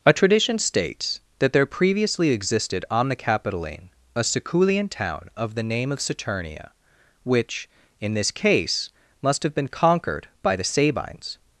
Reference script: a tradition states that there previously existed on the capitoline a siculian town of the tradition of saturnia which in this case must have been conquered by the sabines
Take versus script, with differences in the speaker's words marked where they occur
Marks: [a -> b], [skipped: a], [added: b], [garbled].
a tradition states that there previously existed on the capitoline a siculian town of the [tradition -> name] of saturnia which in this case must have been conquered by the sabines